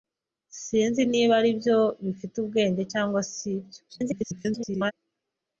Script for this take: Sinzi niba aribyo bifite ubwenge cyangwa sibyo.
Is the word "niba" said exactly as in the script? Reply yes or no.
yes